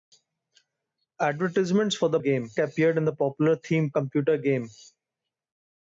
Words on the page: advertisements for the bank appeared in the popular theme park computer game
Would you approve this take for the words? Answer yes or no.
no